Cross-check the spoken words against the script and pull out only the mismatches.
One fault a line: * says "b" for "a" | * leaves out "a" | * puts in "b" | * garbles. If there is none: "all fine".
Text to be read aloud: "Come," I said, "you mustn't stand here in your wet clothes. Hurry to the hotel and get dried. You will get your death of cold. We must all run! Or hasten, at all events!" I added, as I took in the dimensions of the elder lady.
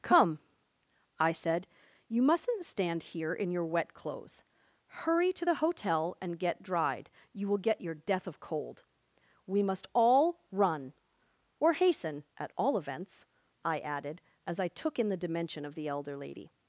* says "dimension" for "dimensions"